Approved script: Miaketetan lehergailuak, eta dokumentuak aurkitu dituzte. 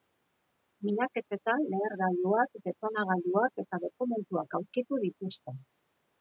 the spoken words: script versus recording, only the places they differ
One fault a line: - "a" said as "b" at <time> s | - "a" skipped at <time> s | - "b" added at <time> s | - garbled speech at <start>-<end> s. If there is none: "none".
- "detonagailuak" added at 2.7 s